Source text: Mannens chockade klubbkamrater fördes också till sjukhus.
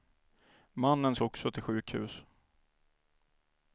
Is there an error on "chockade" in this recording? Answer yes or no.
yes